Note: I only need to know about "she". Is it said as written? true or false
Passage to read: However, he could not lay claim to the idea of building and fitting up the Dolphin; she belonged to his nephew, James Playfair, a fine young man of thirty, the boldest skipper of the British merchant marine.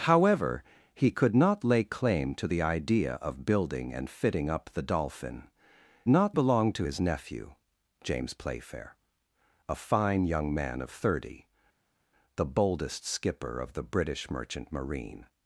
false